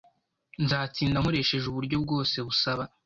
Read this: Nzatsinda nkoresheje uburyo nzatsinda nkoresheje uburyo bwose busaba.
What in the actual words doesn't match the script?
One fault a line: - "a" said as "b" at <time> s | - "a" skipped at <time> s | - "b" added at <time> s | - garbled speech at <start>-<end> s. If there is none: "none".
- "nzatsinda nkoresheje uburyo" skipped at 2.0 s